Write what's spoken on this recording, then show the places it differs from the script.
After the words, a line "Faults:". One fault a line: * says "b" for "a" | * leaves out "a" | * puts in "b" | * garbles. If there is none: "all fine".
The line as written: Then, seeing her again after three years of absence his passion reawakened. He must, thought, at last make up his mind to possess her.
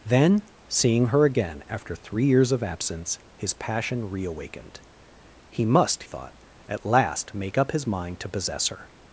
Then, seeing her again after three years of absence his passion reawakened. He must, thought, at last make up his mind to possess her.
Faults:
all fine